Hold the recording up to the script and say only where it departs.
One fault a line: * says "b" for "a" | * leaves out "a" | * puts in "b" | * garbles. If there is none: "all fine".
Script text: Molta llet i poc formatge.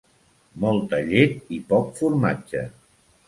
all fine